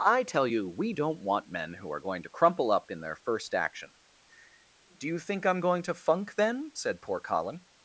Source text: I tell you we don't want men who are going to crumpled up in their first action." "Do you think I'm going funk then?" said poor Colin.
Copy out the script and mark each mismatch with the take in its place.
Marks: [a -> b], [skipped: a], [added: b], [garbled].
I tell you we don't want men who are going to [crumpled -> crumple] up in their first action." "Do you think I'm going [added: to] funk then?" said poor Colin.